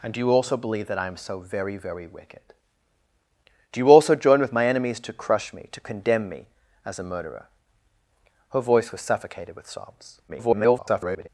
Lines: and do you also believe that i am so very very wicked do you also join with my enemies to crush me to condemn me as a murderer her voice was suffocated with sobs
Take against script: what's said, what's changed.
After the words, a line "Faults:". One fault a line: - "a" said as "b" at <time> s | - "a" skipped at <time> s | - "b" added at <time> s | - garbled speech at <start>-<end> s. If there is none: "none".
and do you also believe that i am so very very wicked do you also join with my enemies to crush me to condemn me as a murderer her voice was suffocated with sobs [garbled]
Faults:
- garbled speech at 10.3-11.3 s